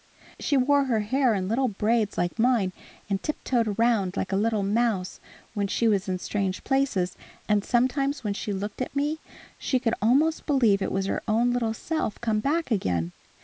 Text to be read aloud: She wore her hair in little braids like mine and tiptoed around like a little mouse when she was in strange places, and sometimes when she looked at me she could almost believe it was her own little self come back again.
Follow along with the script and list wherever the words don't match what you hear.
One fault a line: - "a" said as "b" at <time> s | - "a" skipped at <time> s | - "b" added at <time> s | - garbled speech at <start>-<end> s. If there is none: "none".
none